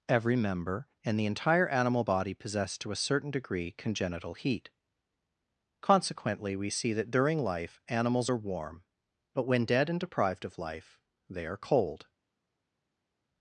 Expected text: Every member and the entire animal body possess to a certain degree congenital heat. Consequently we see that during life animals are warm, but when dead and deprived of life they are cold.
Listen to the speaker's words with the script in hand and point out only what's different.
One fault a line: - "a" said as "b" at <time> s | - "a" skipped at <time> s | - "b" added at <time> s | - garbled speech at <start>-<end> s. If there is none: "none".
none